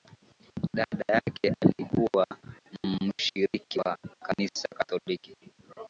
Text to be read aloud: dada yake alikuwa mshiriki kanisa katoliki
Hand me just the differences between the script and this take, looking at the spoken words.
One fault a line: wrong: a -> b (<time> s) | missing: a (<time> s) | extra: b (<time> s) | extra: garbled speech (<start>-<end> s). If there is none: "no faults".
extra: wa (3.8 s)